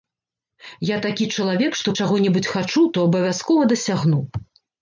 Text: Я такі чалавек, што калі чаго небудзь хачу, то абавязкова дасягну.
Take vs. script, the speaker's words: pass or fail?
fail